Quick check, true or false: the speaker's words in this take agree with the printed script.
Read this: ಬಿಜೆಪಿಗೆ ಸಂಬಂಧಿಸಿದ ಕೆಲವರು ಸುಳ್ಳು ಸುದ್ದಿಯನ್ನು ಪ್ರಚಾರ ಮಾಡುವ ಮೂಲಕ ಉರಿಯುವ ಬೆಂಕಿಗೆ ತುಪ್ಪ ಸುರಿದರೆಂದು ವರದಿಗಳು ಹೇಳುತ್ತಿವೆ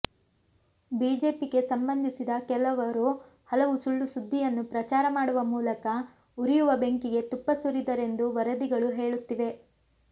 false